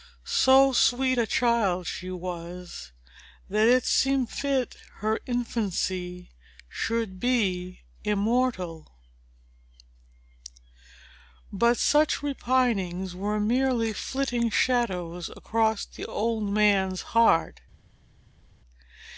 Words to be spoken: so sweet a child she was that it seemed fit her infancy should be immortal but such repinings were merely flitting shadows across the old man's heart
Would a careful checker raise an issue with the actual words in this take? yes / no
no